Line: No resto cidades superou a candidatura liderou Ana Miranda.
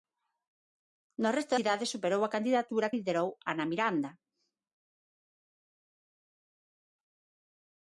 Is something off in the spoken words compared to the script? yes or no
no